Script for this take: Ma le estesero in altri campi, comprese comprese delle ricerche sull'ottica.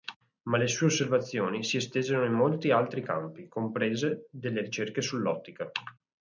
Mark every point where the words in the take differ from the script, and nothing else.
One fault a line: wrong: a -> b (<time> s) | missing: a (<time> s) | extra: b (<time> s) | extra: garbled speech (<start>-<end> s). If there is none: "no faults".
extra: sue osservazioni si (0.7 s)
extra: molti (2.3 s)
missing: comprese (4.3 s)